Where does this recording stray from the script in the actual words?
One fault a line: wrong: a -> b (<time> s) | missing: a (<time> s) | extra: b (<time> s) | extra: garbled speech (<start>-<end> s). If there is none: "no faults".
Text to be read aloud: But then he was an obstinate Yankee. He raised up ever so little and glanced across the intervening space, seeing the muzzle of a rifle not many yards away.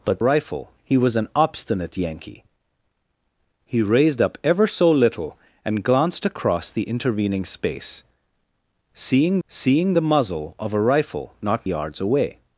wrong: then -> rifle (0.2 s)
extra: seeing (9.5 s)
missing: many (11.7 s)